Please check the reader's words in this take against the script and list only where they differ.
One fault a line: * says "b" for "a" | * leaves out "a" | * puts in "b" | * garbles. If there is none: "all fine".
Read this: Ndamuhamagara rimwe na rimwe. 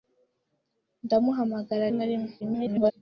* leaves out "rimwe"
* garbles